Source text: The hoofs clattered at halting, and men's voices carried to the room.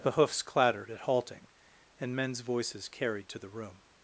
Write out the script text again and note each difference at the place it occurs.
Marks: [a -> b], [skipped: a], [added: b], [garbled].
The hoofs clattered at halting, and men's voices carried to the room.